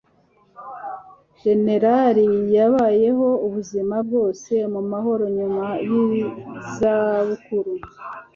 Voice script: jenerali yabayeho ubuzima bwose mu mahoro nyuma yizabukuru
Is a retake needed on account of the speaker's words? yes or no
no